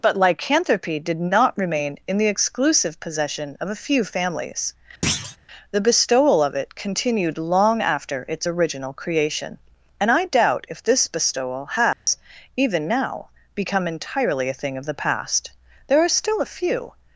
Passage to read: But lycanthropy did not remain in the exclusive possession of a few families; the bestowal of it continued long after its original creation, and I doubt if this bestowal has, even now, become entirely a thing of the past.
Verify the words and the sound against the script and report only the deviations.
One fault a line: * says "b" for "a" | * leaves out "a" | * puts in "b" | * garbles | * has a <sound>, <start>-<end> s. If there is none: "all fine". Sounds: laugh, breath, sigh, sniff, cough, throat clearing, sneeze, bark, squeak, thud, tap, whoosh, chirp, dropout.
* has a thud, 5.0-5.4 s
* has a dropout, 11.9-12.1 s
* puts in "There are still a few"